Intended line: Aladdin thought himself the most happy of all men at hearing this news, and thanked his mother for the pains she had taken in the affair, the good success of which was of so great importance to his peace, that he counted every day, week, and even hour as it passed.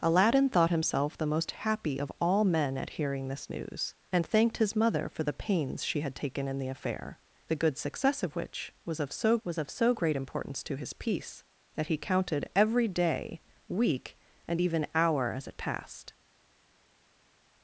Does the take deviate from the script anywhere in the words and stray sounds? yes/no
yes